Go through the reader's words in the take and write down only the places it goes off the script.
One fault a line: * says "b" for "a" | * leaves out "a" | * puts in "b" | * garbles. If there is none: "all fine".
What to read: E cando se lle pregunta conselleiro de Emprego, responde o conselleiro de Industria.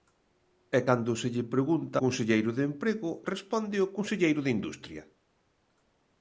all fine